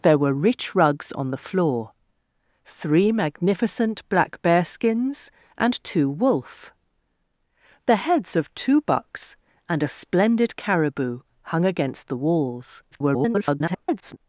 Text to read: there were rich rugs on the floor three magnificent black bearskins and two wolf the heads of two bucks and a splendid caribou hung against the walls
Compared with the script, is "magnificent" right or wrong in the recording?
right